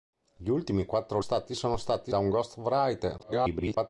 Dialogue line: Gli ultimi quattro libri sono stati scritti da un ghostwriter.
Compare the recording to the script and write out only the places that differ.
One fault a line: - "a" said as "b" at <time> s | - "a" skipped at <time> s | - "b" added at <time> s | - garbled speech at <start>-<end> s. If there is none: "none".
- "libri" said as "stati" at 1.2 s
- "scritti" skipped at 2.1 s
- garbled speech at 3.2-3.9 s